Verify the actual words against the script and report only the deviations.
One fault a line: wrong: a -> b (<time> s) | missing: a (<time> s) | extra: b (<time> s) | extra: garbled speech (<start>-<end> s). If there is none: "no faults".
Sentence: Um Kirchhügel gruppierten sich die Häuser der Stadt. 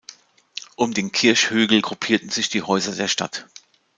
extra: den (0.9 s)